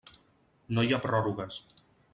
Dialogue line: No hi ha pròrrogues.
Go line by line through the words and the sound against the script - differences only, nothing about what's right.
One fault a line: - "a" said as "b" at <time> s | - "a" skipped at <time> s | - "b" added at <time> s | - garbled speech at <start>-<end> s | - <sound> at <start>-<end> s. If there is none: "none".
none